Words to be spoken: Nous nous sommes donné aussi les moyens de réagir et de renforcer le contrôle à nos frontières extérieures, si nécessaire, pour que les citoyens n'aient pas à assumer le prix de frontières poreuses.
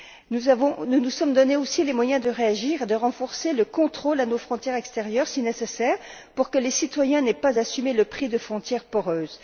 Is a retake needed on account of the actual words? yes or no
no